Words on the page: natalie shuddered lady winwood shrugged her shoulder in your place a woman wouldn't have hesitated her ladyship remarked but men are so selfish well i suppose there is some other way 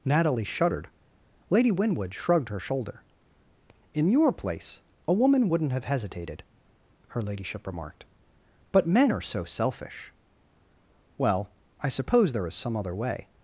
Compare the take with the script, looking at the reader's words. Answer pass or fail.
pass